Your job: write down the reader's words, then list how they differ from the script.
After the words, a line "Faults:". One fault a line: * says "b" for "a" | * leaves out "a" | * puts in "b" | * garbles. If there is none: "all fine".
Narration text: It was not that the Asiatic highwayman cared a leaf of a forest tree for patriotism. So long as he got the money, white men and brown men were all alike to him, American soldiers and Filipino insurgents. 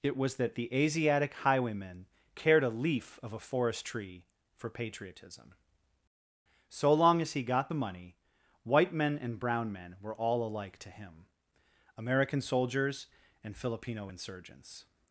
It was that the Asiatic highwayman cared a leaf of a forest tree for patriotism. So long as he got the money, white men and brown men were all alike to him, American soldiers and Filipino insurgents.
Faults:
* leaves out "not"